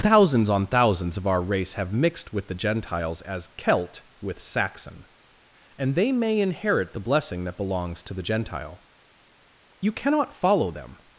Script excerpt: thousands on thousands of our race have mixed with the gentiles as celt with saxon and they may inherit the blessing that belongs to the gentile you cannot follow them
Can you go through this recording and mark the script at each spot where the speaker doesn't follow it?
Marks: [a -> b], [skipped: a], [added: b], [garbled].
thousands on thousands of our race have mixed with the gentiles as celt with saxon and they may inherit the blessing that belongs to the gentile you cannot follow them